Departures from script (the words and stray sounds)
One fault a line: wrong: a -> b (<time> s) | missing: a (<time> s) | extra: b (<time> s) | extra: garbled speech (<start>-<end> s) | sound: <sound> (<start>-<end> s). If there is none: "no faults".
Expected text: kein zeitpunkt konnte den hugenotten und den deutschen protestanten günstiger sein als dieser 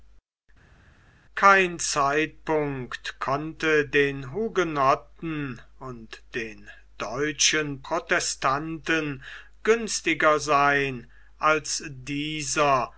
no faults